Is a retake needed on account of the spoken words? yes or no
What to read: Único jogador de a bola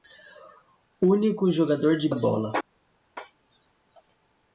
no